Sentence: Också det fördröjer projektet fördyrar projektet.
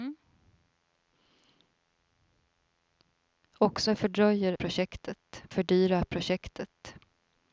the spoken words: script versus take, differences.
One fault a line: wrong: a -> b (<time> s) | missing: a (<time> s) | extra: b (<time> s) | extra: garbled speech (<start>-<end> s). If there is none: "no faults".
no faults